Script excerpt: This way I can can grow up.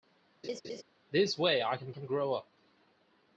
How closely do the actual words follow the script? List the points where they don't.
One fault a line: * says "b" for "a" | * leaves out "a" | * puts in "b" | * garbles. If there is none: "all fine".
all fine